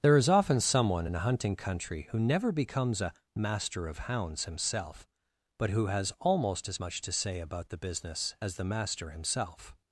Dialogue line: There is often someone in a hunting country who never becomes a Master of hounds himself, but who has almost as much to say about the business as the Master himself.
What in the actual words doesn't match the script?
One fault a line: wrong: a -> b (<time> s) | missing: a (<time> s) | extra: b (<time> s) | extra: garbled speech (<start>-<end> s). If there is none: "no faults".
no faults